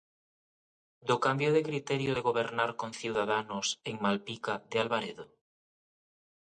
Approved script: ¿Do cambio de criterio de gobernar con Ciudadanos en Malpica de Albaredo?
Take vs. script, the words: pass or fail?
pass